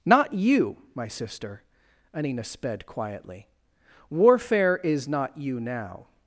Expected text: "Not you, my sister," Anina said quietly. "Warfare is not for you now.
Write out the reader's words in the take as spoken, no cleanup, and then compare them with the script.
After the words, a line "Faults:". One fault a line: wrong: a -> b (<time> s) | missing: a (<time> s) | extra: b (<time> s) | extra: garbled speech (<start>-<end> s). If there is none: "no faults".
"Not you, my sister," Anina sped quietly. "Warfare is not you now.
Faults:
wrong: said -> sped (2.4 s)
missing: for (5.4 s)